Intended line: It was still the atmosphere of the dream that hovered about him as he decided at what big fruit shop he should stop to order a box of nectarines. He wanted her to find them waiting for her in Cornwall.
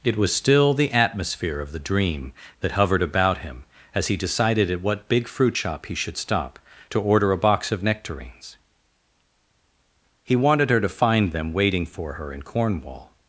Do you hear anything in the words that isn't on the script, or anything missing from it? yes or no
no